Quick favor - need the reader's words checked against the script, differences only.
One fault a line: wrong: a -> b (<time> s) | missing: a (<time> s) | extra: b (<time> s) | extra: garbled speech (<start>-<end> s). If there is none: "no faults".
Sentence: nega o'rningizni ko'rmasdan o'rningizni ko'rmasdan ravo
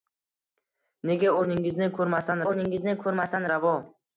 no faults